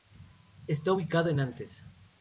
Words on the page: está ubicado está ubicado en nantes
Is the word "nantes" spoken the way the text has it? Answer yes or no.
yes